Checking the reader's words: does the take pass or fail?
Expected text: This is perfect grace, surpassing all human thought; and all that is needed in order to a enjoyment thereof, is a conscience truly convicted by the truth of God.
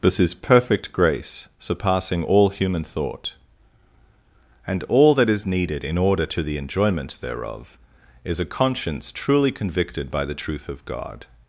fail